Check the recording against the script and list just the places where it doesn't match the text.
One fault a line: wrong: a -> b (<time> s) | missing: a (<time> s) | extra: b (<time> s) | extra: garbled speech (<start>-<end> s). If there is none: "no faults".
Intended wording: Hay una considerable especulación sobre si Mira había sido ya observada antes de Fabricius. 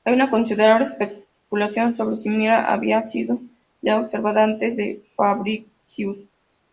no faults